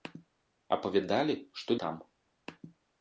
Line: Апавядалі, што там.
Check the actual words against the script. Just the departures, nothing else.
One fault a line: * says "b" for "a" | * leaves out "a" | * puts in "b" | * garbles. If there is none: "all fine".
all fine